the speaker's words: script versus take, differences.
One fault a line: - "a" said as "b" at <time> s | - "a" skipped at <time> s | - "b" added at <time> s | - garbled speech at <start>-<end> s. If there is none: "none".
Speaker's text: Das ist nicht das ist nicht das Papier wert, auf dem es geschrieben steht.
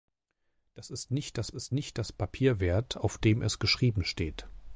none